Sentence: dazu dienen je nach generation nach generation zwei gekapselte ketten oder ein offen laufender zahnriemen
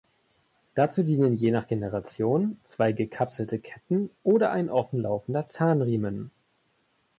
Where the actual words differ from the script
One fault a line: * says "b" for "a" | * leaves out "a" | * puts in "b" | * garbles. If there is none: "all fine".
* leaves out "nach generation"